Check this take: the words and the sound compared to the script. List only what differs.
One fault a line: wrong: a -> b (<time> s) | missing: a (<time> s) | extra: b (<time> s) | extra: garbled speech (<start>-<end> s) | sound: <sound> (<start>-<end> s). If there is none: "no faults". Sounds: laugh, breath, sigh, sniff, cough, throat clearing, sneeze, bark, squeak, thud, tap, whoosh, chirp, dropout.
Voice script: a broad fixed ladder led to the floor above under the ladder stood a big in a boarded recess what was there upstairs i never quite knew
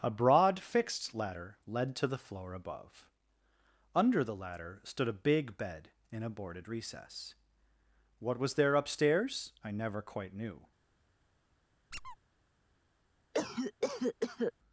extra: bed (5.6 s)
sound: squeak (11.9-12.2 s)
sound: cough (13.3-14.5 s)